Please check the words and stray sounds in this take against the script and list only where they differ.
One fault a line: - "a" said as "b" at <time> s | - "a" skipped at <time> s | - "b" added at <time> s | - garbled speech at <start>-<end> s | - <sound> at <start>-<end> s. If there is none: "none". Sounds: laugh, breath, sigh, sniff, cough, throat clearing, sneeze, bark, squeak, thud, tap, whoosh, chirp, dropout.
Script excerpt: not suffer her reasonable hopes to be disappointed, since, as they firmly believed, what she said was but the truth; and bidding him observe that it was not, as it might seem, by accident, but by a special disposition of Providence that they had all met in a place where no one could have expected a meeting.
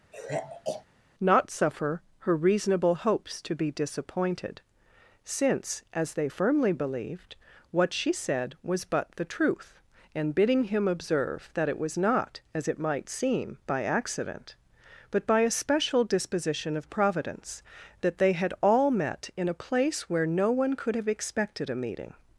- sigh at 0.1-0.9 s